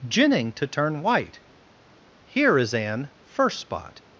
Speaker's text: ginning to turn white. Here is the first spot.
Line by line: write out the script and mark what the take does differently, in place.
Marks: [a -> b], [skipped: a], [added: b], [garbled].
ginning to turn white. Here is [the -> an] first spot.